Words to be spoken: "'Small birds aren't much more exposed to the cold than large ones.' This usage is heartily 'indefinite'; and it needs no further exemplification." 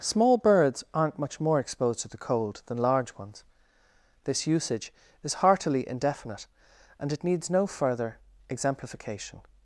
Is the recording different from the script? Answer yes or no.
no